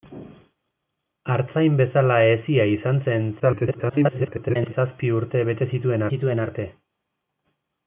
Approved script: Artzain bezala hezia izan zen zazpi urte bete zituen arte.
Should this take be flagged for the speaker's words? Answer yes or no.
yes